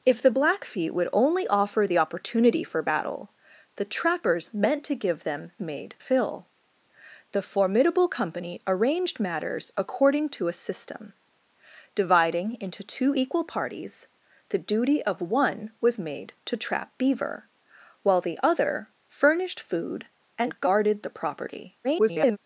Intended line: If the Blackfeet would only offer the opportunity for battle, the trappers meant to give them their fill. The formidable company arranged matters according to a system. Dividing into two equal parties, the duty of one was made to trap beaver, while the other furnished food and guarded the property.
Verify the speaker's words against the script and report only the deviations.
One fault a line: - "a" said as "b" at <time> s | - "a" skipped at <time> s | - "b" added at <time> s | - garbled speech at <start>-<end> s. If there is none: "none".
- "their" said as "made" at 5.6 s
- garbled speech at 21.8-22.4 s